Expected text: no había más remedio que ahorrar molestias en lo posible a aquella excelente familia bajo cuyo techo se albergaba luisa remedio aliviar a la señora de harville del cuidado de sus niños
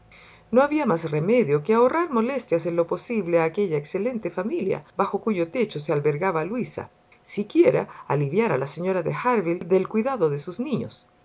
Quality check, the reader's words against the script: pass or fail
fail